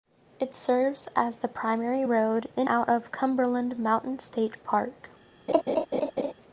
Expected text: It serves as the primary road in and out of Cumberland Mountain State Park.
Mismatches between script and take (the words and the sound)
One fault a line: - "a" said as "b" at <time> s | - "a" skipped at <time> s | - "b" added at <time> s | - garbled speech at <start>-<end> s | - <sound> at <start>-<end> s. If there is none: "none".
- "and" skipped at 2.7 s
- laugh at 5.5-6.3 s